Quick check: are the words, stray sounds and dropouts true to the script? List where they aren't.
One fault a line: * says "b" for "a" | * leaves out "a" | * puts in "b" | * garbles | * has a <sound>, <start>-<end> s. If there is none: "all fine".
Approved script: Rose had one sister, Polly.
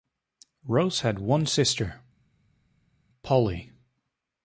all fine